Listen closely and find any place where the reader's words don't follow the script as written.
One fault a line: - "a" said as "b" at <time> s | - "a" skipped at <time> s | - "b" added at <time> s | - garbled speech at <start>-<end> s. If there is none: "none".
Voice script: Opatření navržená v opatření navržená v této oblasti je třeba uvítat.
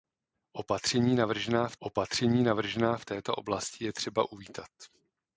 none